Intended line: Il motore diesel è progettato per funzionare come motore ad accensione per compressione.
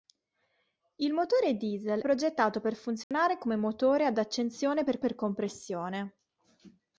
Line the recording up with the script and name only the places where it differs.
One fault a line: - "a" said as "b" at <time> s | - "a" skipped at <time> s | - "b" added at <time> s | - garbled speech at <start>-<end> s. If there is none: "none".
- "è" skipped at 2.0 s
- "per" added at 5.0 s